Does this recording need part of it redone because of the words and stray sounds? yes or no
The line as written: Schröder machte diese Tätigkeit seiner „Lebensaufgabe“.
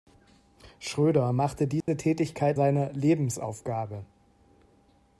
yes